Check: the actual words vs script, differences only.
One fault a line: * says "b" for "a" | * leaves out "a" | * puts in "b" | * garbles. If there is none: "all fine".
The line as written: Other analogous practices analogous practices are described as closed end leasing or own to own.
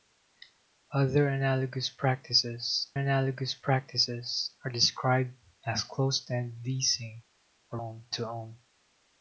all fine